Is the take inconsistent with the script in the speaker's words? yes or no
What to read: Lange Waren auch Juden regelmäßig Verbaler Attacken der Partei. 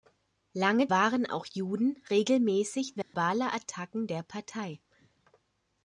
no